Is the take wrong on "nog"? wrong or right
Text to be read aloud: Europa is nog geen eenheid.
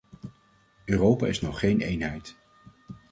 right